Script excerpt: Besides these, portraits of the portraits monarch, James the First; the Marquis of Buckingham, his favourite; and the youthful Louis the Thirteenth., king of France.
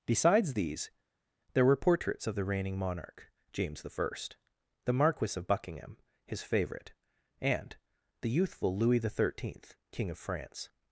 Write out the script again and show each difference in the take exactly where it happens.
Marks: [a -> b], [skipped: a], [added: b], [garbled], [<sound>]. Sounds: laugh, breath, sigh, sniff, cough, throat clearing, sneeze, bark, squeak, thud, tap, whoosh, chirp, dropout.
Besides these, [added: there were] portraits of the [portraits -> reigning] monarch, James the First; the Marquis of Buckingham, his favourite; and the youthful Louis the Thirteenth., king of France.